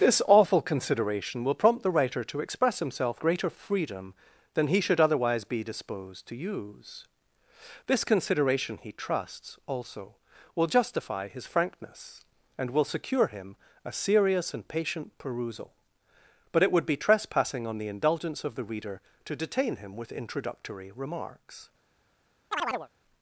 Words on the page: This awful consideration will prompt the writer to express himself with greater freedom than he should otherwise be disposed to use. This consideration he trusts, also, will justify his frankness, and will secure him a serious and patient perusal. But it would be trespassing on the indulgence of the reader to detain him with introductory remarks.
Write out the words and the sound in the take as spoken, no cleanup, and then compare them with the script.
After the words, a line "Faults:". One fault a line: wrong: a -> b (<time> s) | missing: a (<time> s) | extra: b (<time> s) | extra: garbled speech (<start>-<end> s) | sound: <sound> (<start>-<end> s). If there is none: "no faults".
This awful consideration will prompt the writer to express himself greater freedom than he should otherwise be disposed to use. This consideration he trusts, also, will justify his frankness, and will secure him a serious and patient perusal. But it would be trespassing on the indulgence of the reader to detain him with introductory remarks.
Faults:
missing: with (3.2 s)
sound: chirp (22.5-22.9 s)